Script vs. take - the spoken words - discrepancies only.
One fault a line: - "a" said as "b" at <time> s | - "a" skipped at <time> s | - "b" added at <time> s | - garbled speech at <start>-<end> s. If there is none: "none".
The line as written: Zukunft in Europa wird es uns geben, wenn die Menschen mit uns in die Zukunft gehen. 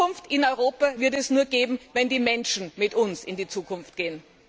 - "uns" said as "nur" at 1.3 s